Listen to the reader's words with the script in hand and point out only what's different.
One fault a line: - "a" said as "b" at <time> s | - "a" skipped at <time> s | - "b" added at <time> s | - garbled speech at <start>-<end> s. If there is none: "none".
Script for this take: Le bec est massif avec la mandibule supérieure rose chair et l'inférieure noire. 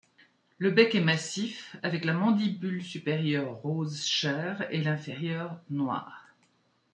none